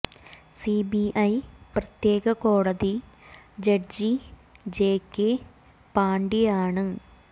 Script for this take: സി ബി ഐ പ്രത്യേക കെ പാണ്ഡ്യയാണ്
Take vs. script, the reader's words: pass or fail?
fail